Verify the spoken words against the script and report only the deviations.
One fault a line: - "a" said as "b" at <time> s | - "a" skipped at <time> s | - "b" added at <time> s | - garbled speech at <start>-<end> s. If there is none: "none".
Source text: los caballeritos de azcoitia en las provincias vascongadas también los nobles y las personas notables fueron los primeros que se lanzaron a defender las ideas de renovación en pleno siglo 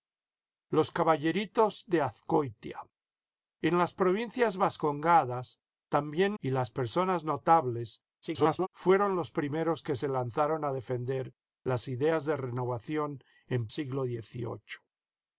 - "los nobles" skipped at 6.4 s
- garbled speech at 8.2-8.7 s
- "pleno" skipped at 13.7 s